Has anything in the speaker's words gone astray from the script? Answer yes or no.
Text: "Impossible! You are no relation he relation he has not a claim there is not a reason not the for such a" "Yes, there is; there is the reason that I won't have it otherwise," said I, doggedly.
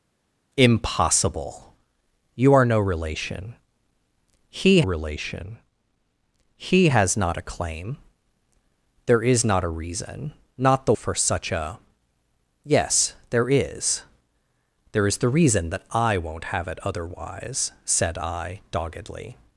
no